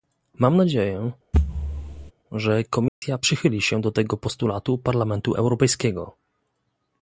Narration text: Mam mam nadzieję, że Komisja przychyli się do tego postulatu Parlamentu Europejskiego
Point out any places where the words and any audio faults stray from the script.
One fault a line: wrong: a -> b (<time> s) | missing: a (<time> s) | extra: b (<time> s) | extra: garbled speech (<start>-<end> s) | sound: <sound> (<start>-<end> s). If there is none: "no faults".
missing: mam (0.6 s)
sound: thud (1.3-2.1 s)
sound: dropout (2.9-3.0 s)